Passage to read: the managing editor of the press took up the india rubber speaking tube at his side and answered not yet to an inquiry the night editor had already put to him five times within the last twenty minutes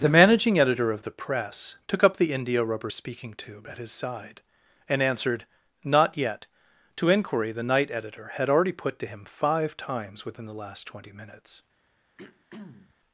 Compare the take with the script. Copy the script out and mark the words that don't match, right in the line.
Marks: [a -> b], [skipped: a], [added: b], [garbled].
the managing editor of the press took up the india rubber speaking tube at his side and answered not yet to [skipped: an] inquiry the night editor had already put to him five times within the last twenty minutes